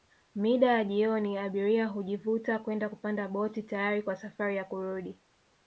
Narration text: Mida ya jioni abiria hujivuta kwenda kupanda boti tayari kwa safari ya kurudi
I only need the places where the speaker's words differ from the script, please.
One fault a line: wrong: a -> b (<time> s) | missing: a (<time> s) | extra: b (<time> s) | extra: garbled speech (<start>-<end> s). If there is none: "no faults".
no faults